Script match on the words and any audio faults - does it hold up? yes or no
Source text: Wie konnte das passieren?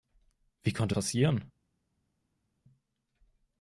no